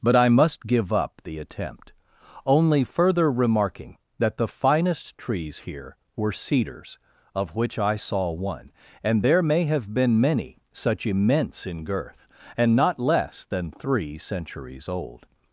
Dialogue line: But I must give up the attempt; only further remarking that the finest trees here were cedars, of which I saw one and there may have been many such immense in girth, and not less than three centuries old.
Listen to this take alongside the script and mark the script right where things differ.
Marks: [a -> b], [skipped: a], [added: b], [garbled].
But I must give up the attempt; only further remarking that the finest trees here were cedars, of which I saw one and there may have been many such immense in girth, and not less than three centuries old.